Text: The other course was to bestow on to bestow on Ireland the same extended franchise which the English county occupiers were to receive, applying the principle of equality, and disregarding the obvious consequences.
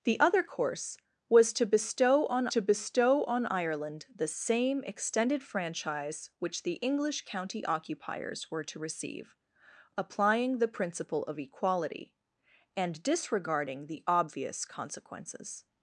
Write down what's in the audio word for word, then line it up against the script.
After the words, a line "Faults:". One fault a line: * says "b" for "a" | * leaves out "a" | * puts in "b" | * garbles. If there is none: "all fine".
The other course was to bestow on to bestow on Ireland the same extended franchise which the English county occupiers were to receive, applying the principle of equality, and disregarding the obvious consequences.
Faults:
all fine